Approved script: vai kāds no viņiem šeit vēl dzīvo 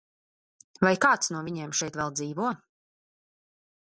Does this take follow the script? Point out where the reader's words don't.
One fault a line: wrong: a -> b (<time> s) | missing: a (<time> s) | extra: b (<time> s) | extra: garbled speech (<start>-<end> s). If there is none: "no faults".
no faults